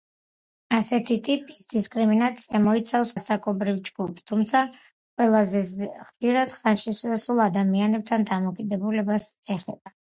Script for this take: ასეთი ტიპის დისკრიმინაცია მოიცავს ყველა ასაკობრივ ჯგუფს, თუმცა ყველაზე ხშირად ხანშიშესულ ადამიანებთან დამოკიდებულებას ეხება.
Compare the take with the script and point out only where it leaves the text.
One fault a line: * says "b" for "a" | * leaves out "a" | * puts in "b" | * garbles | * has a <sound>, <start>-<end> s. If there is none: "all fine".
* leaves out "ყველა"